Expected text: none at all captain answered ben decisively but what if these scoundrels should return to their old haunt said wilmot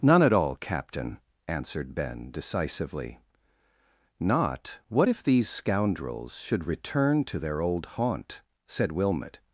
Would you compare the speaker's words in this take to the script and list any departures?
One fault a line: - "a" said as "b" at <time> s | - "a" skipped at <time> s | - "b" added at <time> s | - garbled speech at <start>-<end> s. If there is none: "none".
- "but" said as "not" at 4.2 s